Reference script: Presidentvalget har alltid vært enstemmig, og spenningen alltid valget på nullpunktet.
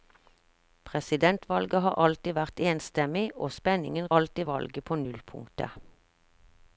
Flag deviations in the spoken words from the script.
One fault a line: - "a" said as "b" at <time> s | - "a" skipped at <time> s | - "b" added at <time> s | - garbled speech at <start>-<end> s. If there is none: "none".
none